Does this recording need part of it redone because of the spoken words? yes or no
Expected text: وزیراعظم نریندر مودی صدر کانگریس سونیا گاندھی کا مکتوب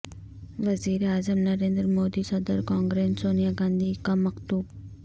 no